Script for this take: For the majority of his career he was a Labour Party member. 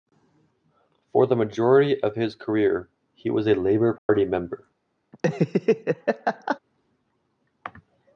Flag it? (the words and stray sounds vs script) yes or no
yes